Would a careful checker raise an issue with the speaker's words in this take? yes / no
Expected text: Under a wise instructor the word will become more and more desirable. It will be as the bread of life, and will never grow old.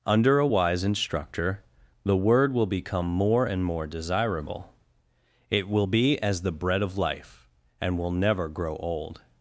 no